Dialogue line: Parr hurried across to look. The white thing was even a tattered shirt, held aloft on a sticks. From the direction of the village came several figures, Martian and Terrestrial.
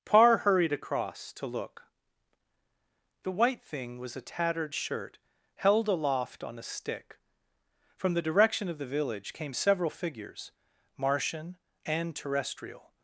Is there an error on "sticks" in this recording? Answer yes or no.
yes